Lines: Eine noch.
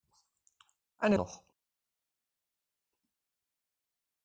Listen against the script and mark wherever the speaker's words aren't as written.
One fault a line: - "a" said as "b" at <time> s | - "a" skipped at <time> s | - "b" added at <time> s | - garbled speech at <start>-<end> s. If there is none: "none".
none